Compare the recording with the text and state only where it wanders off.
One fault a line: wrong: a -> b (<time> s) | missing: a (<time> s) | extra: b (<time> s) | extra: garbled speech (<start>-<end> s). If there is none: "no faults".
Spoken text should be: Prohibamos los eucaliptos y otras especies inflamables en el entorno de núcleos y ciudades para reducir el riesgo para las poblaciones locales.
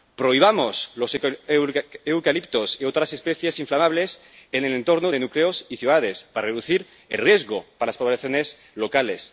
no faults